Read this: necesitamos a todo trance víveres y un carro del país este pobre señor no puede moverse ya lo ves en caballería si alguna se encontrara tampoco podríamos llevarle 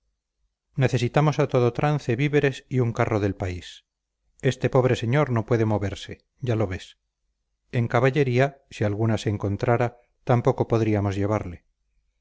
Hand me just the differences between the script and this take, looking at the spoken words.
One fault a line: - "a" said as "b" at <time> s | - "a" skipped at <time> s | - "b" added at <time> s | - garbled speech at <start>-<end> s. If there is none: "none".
none